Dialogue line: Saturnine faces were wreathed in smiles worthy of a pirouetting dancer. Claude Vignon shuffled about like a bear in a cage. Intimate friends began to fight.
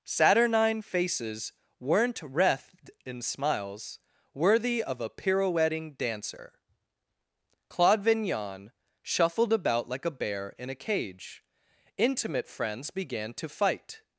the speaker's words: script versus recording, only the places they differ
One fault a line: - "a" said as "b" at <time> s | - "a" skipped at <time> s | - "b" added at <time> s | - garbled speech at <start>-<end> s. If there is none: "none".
- "were" said as "weren't" at 1.8 s